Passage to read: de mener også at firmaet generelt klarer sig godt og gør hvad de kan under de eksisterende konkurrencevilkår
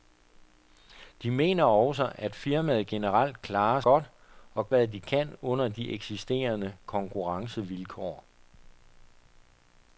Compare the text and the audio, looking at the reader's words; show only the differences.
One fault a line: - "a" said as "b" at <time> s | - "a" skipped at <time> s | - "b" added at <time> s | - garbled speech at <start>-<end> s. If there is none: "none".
- "sig" skipped at 3.8 s
- "gør" skipped at 4.7 s